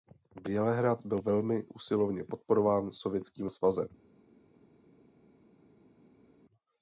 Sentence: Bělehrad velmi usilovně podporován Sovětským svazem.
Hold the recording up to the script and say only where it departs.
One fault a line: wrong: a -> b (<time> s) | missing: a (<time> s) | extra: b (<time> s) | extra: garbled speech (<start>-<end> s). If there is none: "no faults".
extra: byl (1.1 s)